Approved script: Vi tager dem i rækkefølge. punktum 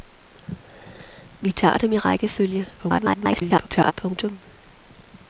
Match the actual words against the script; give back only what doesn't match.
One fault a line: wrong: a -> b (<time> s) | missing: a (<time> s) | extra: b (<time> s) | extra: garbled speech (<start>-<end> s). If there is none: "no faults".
extra: garbled speech (2.8-3.9 s)